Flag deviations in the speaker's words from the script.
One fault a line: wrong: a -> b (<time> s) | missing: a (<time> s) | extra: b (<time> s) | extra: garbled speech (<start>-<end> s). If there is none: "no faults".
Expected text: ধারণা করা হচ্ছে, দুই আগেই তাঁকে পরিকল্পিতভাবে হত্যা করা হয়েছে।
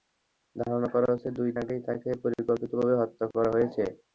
no faults